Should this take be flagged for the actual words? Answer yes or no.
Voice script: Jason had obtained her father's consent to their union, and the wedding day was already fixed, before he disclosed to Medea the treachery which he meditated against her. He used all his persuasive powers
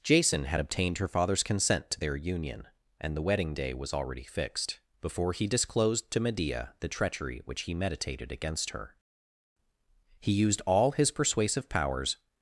no